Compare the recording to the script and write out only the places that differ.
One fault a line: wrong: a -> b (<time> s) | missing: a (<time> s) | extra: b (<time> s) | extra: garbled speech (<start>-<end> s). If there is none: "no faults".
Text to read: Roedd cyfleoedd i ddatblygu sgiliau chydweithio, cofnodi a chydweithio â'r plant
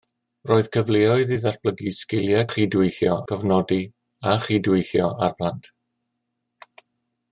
no faults